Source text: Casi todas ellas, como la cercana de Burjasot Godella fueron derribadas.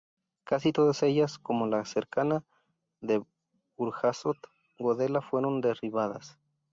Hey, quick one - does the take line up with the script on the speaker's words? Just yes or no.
yes